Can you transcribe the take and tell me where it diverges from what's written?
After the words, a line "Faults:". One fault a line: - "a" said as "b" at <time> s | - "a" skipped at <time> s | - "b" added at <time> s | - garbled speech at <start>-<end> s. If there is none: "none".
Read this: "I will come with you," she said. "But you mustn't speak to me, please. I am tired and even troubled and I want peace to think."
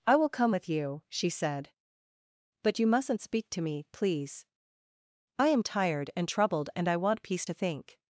"I will come with you," she said. "But you mustn't speak to me, please. I am tired and troubled and I want peace to think."
Faults:
- "even" skipped at 6.3 s